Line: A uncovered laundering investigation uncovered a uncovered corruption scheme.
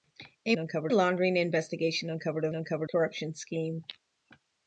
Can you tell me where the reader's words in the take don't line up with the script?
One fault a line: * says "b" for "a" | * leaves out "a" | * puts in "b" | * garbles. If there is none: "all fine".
all fine